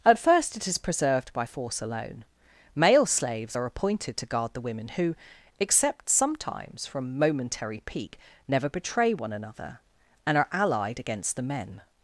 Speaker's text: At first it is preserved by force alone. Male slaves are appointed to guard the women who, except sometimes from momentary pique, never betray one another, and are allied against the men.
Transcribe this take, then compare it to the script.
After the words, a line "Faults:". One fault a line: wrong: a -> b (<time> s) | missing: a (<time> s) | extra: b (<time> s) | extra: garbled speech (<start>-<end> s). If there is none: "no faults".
At first it is preserved by force alone. Male slaves are appointed to guard the women who, except sometimes from momentary pique, never betray one another, and are allied against the men.
Faults:
no faults